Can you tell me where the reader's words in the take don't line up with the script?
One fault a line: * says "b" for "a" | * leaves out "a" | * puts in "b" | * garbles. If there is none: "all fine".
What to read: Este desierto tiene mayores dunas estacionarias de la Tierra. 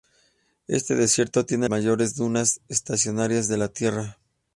all fine